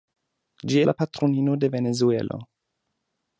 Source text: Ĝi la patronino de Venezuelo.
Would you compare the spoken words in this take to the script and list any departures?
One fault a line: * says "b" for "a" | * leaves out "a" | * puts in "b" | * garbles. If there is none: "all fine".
all fine